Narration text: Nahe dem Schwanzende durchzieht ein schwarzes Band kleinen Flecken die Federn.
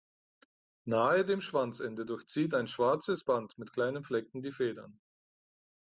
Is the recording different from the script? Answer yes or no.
yes